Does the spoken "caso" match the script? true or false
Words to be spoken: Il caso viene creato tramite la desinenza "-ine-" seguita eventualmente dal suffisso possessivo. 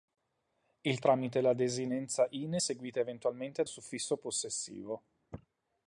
false